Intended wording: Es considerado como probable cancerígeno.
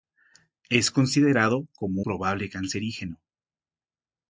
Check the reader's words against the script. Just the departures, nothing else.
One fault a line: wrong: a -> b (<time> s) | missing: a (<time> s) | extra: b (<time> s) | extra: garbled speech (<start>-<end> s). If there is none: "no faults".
no faults